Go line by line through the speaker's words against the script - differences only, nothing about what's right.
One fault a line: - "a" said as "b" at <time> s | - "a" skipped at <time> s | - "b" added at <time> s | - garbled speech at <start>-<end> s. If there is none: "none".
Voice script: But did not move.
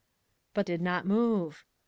none